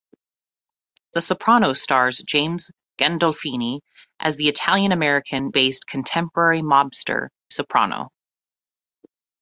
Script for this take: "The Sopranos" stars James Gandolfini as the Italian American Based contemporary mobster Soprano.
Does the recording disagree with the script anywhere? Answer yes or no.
no